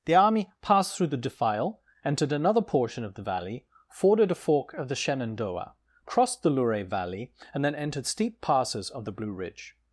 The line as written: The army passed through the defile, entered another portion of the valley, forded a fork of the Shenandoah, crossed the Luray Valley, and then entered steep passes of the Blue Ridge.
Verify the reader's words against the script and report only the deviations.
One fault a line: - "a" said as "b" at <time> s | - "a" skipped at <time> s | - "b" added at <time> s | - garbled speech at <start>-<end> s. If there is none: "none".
none